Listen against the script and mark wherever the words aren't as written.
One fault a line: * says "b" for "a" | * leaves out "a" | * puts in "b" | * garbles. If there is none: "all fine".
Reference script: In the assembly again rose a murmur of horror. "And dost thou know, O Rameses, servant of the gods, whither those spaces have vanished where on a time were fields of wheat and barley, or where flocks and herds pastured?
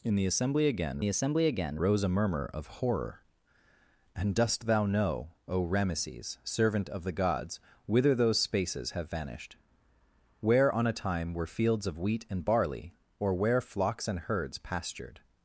* puts in "the assembly again"